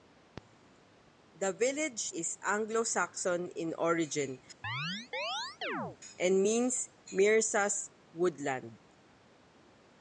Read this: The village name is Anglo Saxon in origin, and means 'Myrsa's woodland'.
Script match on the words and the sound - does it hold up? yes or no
no